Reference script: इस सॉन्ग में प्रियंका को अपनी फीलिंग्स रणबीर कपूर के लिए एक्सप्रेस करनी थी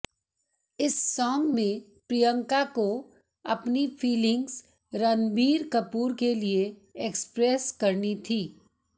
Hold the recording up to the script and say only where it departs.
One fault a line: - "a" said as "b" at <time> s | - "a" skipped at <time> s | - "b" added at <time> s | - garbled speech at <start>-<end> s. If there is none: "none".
none